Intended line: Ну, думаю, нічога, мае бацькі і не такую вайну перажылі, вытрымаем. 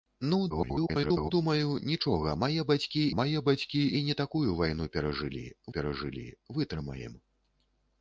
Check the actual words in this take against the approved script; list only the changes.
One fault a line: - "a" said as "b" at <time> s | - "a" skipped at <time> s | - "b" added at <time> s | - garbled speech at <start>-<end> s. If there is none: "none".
- garbled speech at 0.5-1.3 s
- "мае бацькі" added at 3.2 s
- "перажылі" added at 5.8 s